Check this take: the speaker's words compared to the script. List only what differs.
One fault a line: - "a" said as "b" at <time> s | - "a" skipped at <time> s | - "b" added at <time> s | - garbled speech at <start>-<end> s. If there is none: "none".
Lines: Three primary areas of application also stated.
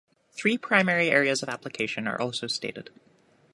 - "are" added at 2.1 s